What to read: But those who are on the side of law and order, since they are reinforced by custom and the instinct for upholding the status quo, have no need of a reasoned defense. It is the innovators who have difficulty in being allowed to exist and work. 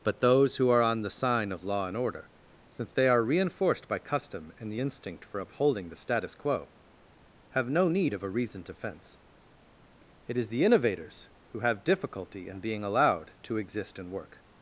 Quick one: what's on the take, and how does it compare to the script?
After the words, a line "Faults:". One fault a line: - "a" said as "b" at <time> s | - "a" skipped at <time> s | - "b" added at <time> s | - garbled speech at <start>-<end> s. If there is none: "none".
But those who are on the sign of law and order, since they are reinforced by custom and the instinct for upholding the status quo, have no need of a reasoned defense. It is the innovators who have difficulty in being allowed to exist and work.
Faults:
- "side" said as "sign" at 1.1 s